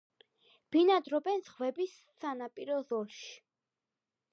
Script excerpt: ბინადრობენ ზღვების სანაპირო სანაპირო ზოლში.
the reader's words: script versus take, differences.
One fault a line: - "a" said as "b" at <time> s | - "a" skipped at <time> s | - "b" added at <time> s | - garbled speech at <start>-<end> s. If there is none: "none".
- "სანაპირო" skipped at 2.8 s